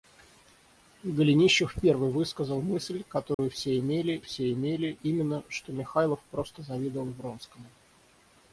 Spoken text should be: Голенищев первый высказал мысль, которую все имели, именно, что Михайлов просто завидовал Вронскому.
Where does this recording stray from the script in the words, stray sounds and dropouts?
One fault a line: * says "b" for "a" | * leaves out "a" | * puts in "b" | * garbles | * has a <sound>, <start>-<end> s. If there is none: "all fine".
* has a dropout, 3.3-3.4 s
* puts in "все имели"